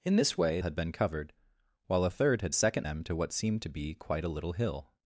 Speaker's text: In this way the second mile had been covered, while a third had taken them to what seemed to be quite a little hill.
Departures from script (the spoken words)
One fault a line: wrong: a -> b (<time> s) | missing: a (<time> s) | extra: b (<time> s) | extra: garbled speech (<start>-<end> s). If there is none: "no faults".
missing: the second mile (0.6 s)
wrong: taken -> second (2.5 s)